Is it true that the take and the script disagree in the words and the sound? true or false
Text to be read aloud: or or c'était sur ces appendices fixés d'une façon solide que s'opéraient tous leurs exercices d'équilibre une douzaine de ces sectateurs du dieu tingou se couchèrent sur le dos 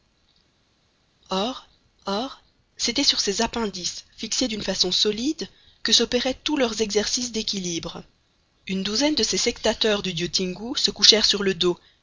false